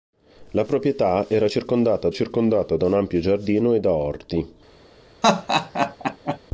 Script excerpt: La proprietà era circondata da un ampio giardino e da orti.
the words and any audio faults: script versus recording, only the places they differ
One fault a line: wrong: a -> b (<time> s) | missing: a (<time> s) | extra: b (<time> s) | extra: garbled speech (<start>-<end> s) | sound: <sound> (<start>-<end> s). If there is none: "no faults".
extra: circondata (2.1 s)
sound: laugh (5.2-6.4 s)